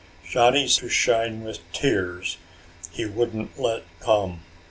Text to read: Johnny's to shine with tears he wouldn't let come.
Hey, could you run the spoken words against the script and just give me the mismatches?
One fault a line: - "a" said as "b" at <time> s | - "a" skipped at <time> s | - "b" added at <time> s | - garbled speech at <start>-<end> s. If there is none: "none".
none